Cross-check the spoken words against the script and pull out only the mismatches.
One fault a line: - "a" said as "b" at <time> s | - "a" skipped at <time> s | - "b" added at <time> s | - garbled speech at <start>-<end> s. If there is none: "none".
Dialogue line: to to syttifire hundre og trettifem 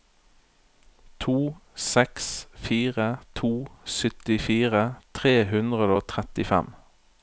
- "seks fire" added at 1.8 s
- "tre" added at 5.1 s